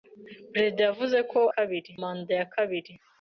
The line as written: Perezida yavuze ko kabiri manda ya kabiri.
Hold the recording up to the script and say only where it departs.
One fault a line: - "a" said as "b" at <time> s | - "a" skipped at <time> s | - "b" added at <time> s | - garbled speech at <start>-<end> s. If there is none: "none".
none